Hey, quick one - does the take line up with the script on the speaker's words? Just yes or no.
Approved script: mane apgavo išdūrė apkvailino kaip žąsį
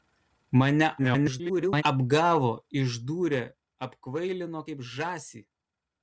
no